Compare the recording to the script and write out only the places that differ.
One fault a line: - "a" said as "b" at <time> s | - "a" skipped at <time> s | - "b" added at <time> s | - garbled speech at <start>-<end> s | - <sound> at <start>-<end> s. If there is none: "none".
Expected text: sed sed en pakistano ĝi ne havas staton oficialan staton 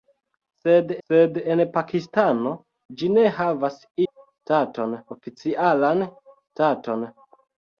none